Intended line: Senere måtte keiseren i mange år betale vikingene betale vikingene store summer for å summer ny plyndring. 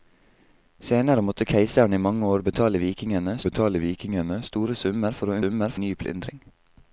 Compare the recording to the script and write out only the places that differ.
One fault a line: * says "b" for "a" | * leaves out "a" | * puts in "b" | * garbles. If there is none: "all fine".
all fine